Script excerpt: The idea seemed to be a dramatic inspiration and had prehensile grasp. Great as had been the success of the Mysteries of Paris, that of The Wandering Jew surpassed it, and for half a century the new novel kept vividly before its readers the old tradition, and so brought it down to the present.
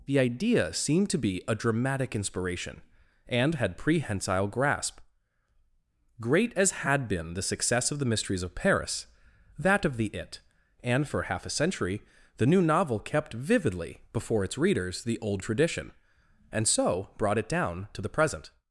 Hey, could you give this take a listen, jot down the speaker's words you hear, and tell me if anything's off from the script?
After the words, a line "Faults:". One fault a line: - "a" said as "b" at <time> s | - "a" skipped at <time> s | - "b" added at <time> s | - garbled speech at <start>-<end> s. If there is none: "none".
The idea seemed to be a dramatic inspiration and had prehensile grasp. Great as had been the success of the Mysteries of Paris, that of The it, and for half a century the new novel kept vividly before its readers the old tradition, and so brought it down to the present.
Faults:
- "Wandering Jew surpassed" skipped at 10.1 s